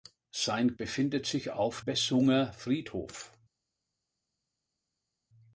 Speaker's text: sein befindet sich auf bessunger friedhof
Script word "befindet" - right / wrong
right